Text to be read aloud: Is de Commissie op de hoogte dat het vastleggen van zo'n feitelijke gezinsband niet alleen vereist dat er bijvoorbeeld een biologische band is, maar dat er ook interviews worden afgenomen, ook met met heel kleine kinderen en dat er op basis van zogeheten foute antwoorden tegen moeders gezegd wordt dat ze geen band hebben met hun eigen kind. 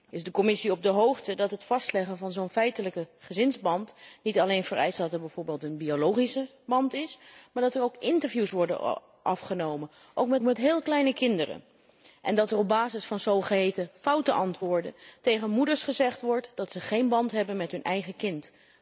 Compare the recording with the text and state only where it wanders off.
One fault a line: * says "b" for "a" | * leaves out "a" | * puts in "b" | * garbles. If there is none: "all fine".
all fine